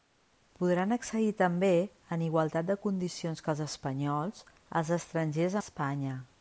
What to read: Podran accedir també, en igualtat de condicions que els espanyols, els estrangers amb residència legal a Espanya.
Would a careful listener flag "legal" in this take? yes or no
yes